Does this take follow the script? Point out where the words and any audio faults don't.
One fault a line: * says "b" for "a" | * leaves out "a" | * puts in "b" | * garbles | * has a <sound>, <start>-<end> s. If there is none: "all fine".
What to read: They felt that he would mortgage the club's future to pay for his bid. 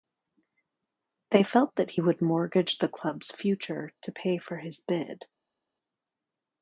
all fine